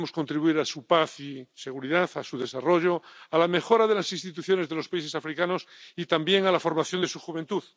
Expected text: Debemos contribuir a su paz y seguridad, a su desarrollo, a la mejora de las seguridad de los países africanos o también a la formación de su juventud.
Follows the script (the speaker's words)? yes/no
no